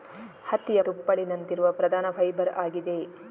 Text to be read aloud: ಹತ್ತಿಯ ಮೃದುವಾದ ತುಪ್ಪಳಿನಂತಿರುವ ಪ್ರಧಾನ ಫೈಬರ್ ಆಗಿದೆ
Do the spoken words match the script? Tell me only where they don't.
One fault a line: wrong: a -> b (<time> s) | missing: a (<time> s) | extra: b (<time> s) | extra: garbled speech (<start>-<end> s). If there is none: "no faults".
missing: ಮೃದುವಾದ (0.8 s)